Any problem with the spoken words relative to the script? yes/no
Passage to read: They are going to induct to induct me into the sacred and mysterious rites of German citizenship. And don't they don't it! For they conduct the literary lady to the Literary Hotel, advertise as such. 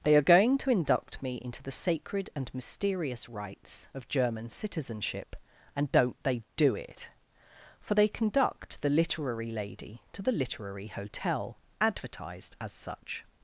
yes